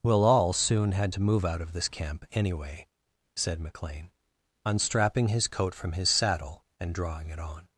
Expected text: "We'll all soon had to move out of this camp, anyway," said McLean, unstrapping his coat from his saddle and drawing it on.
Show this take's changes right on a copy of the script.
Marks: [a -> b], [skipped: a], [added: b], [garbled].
"We'll all soon had to move out of this camp, anyway," said McLean, unstrapping his coat from his saddle and drawing it on.